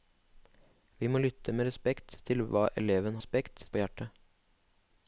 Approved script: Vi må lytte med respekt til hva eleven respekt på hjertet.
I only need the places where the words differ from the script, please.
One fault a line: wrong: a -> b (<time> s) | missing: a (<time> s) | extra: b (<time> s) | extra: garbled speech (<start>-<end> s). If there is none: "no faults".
no faults